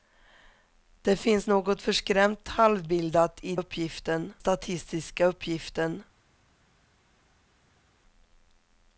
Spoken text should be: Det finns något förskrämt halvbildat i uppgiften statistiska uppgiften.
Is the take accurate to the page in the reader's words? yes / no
yes